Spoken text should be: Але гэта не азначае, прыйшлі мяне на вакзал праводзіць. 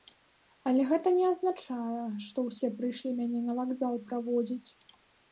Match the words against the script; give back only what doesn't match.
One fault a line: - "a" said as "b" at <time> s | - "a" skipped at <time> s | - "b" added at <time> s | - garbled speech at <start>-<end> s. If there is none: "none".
- "што ўсе" added at 2.3 s